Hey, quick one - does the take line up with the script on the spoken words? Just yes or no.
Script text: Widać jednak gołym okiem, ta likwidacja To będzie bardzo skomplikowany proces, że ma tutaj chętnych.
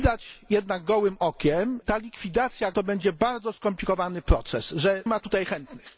yes